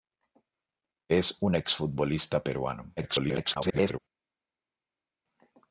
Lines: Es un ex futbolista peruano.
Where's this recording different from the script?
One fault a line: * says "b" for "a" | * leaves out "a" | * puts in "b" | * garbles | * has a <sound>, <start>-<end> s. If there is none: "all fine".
* garbles